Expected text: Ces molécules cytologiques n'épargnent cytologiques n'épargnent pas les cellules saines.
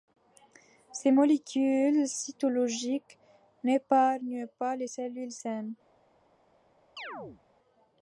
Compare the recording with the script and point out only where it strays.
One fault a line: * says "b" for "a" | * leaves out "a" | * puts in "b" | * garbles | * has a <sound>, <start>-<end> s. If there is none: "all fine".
* leaves out "cytologiques n'épargnent"
* has a chirp, 7.0-7.4 s